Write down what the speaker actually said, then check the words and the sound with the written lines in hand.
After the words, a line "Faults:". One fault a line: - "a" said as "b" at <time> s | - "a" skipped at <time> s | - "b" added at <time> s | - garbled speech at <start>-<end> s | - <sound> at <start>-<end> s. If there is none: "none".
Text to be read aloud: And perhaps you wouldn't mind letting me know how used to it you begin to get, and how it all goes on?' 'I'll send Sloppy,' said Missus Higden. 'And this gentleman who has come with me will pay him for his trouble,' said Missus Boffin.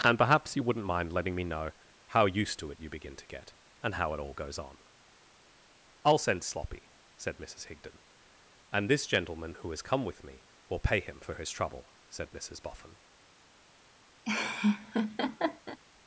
And perhaps you wouldn't mind letting me know how used to it you begin to get, and how it all goes on?' 'I'll send Sloppy,' said Missus Higden. 'And this gentleman who has come with me will pay him for his trouble,' said Missus Boffin.
Faults:
- laugh at 14.2-15.8 s